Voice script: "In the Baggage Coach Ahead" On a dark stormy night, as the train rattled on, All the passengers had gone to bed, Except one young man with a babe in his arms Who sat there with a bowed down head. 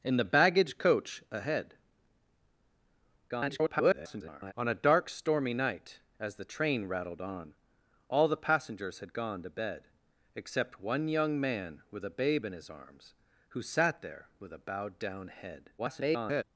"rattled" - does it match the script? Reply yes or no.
yes